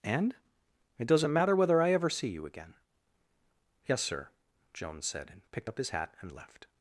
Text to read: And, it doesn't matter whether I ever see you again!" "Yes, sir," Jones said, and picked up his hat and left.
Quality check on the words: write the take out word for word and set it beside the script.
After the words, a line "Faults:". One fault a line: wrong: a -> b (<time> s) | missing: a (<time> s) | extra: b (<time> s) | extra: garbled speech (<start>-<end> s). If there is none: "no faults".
And, it doesn't matter whether I ever see you again!" "Yes, sir," Jones said, and picked up his hat and left.
Faults:
no faults